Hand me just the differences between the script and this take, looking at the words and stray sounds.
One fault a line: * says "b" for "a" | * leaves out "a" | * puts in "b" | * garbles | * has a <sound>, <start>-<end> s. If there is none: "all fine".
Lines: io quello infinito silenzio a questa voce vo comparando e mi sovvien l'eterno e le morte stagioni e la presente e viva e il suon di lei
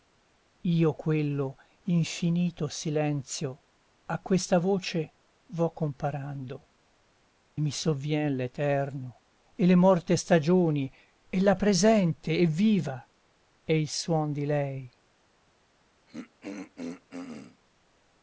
* leaves out "e"
* has a throat clearing, 16.1-17.6 s